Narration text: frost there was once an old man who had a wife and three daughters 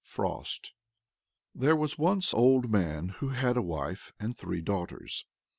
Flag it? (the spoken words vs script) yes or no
yes